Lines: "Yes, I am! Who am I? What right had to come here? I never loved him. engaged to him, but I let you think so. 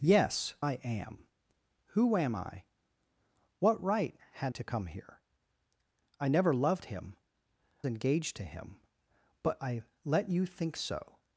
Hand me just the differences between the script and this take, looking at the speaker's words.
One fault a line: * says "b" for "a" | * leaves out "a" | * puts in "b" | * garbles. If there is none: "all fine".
all fine